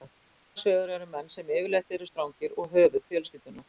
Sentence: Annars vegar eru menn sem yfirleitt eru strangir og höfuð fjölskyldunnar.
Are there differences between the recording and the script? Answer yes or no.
no